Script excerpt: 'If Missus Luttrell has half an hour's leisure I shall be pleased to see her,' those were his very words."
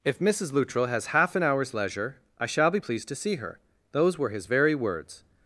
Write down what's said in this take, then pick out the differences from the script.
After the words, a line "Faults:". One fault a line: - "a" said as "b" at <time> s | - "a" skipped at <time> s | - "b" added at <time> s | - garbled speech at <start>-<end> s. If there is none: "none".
'If Missus Luttrell has half an hour's leisure I shall be pleased to see her,' those were his very words."
Faults:
none